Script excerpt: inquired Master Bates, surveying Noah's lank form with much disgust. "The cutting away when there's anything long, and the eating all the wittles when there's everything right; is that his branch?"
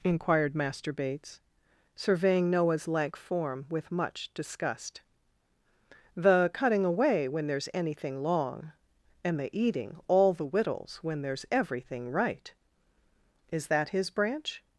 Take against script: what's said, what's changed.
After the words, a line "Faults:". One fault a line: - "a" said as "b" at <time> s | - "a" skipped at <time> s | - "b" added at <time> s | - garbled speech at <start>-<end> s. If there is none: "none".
inquired Master Bates, surveying Noah's lank form with much disgust. "The cutting away when there's anything long, and the eating all the wittles when there's everything right; is that his branch?"
Faults:
none